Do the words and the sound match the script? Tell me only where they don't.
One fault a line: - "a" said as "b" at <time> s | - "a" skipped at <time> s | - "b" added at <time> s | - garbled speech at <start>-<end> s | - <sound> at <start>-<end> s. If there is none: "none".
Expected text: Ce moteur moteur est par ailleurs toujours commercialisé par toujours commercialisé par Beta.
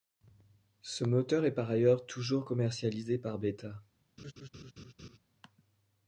- "moteur" skipped at 1.4 s
- "toujours commercialisé par" skipped at 3.4 s
- laugh at 4.2-5.2 s